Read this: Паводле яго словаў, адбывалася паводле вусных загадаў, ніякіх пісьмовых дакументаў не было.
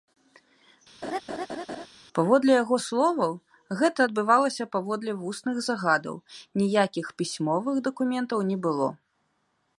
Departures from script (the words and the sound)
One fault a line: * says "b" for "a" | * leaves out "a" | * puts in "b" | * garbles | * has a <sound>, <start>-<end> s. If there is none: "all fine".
* has a laugh, 1.0-1.9 s
* puts in "гэта"